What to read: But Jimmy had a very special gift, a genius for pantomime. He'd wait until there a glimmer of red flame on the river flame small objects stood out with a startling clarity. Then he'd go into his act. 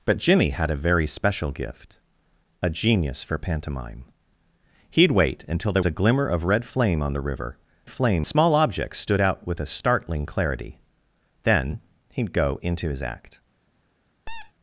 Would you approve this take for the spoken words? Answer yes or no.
yes